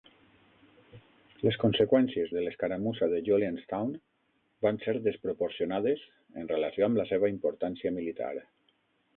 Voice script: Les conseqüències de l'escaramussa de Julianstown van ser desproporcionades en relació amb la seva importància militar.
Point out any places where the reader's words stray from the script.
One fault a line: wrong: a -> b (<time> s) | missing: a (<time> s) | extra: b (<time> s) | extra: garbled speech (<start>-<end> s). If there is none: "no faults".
no faults